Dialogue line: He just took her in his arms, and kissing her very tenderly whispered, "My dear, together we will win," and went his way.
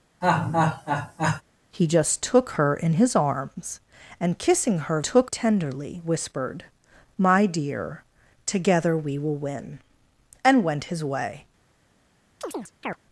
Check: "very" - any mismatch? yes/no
yes